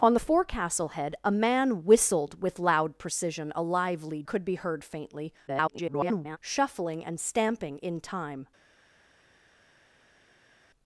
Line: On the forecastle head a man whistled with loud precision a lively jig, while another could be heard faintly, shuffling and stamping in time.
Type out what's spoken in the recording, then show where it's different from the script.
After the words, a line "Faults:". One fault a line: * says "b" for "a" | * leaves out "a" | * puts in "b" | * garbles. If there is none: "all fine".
On the forecastle head a man whistled with loud precision a lively could be heard faintly, [garbled] shuffling and stamping in time.
Faults:
* leaves out "jig while another"
* garbles